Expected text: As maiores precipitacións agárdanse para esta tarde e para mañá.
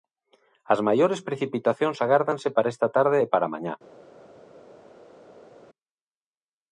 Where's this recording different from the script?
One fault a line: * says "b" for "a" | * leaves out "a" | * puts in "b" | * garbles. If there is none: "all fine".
all fine